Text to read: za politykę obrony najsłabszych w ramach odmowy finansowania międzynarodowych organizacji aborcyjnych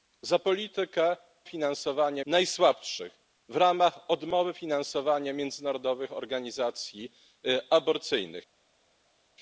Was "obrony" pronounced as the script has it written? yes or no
no